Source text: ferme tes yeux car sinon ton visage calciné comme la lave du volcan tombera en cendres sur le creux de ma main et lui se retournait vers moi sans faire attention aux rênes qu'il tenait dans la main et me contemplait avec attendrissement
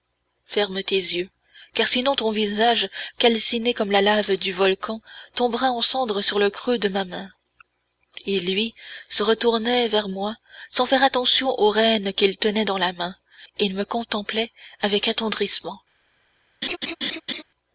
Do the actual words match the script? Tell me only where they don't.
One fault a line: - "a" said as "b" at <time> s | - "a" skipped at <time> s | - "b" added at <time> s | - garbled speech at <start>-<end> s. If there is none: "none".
none